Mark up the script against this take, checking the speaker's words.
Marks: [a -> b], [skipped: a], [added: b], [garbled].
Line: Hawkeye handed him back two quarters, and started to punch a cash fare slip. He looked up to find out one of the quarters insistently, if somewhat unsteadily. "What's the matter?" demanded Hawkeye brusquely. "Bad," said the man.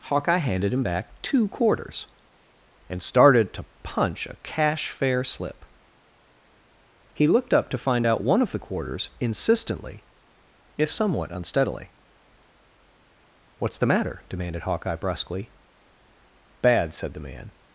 Hawkeye handed him back two quarters, and started to punch a cash fare slip. He looked up to find out one of the quarters insistently, if somewhat unsteadily. "What's the matter?" demanded Hawkeye brusquely. "Bad," said the man.